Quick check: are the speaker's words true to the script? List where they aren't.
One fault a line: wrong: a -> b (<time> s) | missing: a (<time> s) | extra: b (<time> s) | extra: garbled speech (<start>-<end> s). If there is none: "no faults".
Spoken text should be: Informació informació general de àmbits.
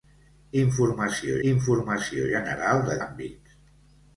no faults